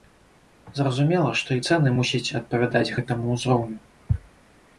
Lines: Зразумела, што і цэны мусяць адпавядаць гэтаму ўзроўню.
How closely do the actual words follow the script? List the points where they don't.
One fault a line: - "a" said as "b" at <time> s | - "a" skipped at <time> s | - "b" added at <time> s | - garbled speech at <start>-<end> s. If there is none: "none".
none